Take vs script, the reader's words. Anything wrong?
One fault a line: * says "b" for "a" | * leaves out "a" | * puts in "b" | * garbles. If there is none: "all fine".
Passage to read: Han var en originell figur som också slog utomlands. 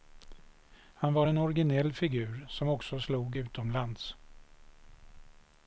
all fine